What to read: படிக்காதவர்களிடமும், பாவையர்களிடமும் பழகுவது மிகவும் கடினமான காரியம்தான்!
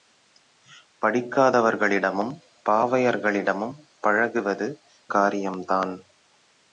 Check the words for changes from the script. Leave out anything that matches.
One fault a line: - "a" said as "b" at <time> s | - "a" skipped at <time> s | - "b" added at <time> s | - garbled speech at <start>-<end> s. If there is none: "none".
- "மிகவும் கடினமான" skipped at 4.7 s